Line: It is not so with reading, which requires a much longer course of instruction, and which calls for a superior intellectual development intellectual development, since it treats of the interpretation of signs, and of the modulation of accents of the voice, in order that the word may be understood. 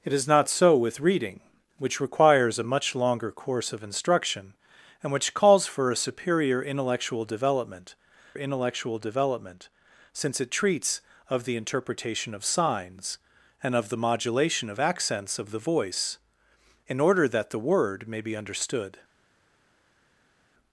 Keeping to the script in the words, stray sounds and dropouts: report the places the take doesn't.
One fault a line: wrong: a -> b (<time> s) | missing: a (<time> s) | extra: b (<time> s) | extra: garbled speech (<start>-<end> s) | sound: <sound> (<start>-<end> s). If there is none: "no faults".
no faults